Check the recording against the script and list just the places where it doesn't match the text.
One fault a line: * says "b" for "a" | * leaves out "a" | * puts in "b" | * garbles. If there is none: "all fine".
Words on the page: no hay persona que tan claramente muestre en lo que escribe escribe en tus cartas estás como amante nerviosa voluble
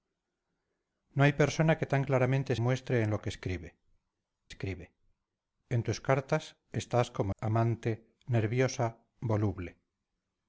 all fine